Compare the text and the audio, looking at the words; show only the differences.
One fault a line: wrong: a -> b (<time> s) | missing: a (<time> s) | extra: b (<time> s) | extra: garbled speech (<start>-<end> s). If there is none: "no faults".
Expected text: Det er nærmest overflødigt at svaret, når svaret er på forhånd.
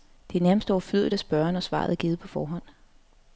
wrong: svaret -> spørge (1.2 s)
extra: givet (1.9 s)